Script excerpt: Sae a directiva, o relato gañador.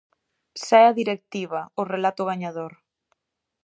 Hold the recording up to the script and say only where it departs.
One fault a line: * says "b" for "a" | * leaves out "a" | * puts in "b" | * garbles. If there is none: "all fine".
all fine